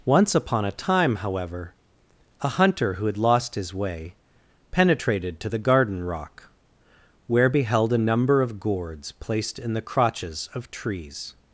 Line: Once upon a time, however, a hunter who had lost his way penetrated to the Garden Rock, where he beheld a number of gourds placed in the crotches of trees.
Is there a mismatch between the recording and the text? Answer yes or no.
yes